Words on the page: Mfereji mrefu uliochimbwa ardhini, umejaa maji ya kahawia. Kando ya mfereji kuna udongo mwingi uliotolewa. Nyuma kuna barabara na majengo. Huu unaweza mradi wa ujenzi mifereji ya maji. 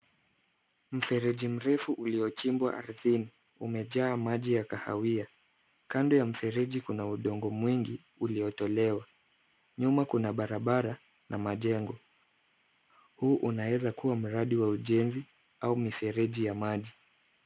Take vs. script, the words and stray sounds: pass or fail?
fail